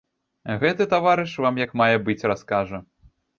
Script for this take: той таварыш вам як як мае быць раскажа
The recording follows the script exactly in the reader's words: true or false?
false